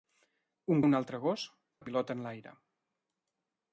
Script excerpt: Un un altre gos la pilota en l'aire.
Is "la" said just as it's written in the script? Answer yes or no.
yes